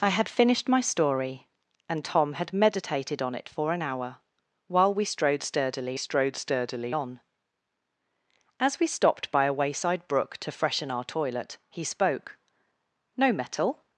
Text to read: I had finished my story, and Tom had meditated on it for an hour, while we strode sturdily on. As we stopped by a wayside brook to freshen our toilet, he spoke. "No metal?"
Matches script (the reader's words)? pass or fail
fail